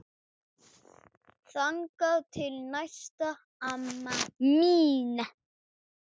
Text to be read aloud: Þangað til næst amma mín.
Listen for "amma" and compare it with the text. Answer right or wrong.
right